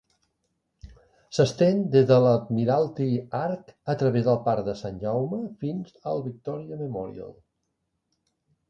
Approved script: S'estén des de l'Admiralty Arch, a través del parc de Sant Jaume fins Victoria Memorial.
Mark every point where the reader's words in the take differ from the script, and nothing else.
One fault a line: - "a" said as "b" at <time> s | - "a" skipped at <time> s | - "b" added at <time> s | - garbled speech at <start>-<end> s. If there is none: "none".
- "al" added at 6.2 s